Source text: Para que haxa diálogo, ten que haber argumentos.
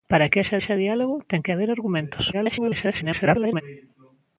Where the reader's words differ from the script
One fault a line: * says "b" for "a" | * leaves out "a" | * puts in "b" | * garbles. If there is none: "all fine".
* puts in "haxa"
* garbles